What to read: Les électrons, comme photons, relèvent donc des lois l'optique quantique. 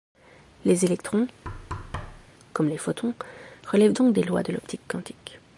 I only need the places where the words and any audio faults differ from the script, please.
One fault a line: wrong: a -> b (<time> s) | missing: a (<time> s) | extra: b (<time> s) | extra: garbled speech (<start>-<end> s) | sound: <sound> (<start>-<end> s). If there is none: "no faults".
sound: thud (1.4-2.3 s)
extra: les (2.7 s)
extra: de (4.4 s)